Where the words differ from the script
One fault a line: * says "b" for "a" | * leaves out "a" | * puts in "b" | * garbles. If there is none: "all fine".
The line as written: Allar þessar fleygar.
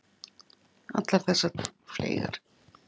all fine